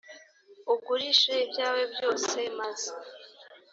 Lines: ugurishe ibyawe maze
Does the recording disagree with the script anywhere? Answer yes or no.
yes